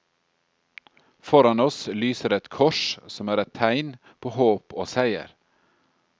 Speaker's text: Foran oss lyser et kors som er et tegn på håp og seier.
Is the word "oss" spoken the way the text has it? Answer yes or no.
yes